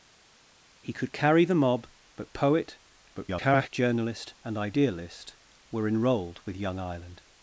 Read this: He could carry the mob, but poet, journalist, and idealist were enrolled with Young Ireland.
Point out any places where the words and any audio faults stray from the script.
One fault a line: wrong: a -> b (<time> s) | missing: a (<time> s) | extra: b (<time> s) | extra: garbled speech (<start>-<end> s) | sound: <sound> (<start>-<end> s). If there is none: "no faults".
extra: garbled speech (3.1-3.7 s)